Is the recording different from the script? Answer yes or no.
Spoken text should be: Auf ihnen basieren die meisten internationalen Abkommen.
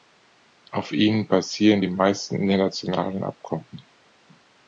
no